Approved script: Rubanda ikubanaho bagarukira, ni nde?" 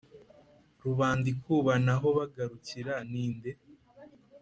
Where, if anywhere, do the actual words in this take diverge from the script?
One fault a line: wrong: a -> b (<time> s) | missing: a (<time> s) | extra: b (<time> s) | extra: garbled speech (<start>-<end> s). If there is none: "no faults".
no faults